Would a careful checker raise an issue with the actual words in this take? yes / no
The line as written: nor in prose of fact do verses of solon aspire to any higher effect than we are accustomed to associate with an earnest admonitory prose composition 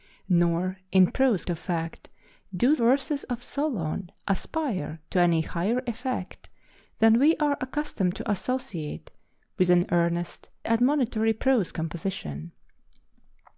no